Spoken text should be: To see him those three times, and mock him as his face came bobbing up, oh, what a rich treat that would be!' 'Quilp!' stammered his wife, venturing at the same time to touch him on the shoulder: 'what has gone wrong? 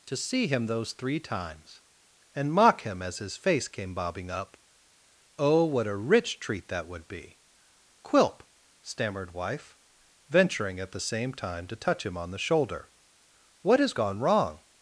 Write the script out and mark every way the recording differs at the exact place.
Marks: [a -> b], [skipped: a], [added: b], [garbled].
To see him those three times, and mock him as his face came bobbing up, oh, what a rich treat that would be!' 'Quilp!' stammered [skipped: his] wife, venturing at the same time to touch him on the shoulder: 'what has gone wrong?